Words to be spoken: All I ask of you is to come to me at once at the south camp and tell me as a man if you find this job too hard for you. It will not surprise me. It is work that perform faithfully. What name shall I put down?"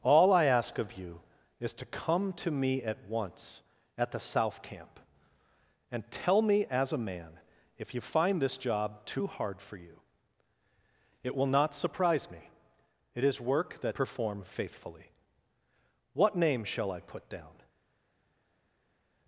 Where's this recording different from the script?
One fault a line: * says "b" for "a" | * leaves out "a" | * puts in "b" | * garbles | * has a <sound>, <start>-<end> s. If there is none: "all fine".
all fine